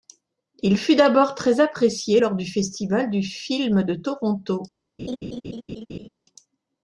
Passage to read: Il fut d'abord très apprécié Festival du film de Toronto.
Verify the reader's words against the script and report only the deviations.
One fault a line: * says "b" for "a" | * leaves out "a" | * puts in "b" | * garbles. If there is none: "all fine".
* puts in "lors du"